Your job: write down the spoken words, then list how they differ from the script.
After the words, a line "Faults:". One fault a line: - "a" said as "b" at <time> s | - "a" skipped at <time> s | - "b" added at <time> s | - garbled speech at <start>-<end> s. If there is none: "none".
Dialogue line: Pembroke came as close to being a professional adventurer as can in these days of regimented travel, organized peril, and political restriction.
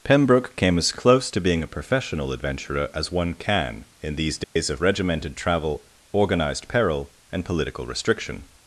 Pembroke came as close to being a professional adventurer as one can in these days of regimented travel, organized peril, and political restriction.
Faults:
- "one" added at 3.1 s